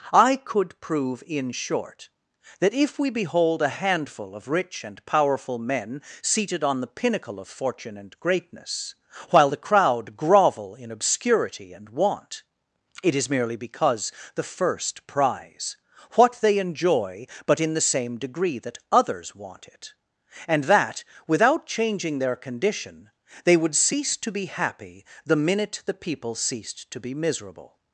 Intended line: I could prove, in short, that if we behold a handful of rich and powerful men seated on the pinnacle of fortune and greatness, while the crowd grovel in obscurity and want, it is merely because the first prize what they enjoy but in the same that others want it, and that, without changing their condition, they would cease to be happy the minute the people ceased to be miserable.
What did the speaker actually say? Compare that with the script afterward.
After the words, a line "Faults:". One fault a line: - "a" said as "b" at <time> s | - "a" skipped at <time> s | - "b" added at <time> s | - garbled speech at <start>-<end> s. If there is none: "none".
I could prove, in short, that if we behold a handful of rich and powerful men seated on the pinnacle of fortune and greatness, while the crowd grovel in obscurity and want, it is merely because the first prize what they enjoy but in the same degree that others want it, and that, without changing their condition, they would cease to be happy the minute the people ceased to be miserable.
Faults:
- "degree" added at 18.2 s